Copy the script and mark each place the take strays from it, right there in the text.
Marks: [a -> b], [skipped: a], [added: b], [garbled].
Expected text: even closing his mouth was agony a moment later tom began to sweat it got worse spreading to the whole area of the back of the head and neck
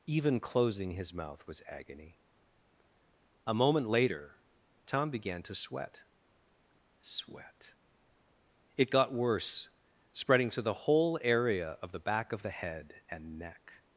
even closing his mouth was agony a moment later tom began to sweat [added: sweat] it got worse spreading to the whole area of the back of the head and neck